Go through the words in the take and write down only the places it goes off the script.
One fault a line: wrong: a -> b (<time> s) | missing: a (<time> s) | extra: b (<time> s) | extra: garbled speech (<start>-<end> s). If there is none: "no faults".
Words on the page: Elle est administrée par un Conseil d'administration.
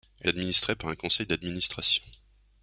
missing: est (0.3 s)